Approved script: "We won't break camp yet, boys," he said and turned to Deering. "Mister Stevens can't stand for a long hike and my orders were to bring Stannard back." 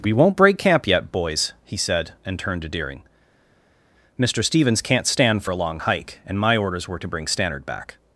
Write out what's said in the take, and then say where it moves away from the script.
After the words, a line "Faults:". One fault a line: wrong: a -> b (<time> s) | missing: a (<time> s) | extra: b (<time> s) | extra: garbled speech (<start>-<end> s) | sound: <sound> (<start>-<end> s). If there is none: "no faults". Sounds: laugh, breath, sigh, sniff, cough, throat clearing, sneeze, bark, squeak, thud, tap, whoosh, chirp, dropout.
"We won't break camp yet, boys," he said and turned to Deering. "Mister Stevens can't stand for a long hike and my orders were to bring Stannard back."
Faults:
no faults